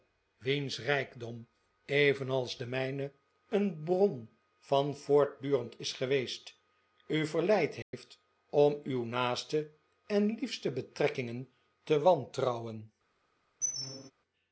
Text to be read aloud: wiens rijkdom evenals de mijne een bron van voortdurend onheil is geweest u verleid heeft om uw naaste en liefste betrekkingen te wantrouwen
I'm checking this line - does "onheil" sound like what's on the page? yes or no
no